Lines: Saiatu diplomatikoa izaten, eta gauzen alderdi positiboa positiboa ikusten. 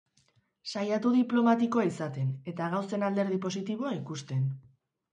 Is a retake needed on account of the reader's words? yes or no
yes